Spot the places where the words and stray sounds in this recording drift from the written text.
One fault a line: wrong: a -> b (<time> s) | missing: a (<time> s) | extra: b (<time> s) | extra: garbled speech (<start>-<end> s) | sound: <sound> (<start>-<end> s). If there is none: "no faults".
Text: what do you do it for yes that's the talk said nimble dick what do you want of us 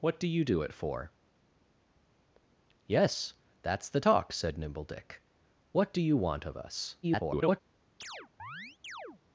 extra: garbled speech (7.0-7.6 s)
sound: chirp (8.0-9.2 s)